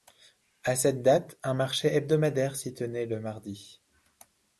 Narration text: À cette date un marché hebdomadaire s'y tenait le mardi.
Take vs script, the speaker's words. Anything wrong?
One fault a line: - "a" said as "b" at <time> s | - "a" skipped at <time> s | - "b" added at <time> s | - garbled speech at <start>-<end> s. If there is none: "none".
none